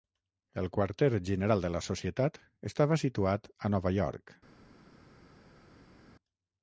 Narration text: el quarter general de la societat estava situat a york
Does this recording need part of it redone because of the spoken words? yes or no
yes